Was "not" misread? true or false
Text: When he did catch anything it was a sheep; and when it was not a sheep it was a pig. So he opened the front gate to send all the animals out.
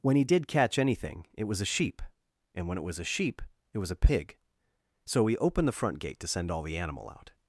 true